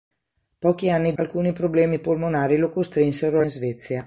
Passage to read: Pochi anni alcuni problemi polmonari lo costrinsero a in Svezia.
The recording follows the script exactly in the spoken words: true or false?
true